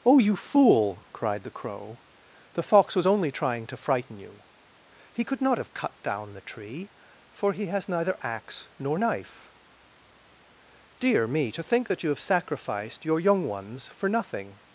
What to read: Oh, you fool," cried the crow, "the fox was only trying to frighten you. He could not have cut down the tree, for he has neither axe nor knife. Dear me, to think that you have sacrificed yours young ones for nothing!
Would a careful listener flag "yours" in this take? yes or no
yes